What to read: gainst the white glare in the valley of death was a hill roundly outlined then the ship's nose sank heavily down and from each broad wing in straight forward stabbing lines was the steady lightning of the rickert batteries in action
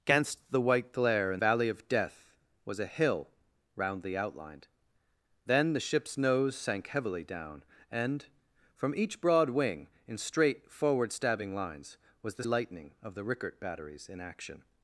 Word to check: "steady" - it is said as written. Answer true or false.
false